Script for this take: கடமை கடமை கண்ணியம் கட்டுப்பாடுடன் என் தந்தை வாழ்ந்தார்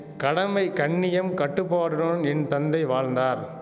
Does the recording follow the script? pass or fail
fail